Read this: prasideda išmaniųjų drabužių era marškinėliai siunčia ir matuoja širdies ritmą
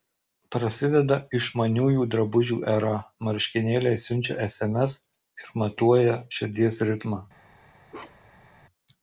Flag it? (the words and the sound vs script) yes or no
yes